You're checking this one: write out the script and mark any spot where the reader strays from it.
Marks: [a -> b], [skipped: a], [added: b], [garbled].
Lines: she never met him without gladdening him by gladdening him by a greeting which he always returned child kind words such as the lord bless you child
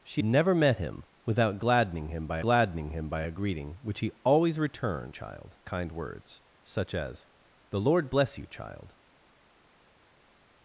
she never met him without gladdening him by gladdening him by a greeting which he always returned child kind words such as the lord bless you child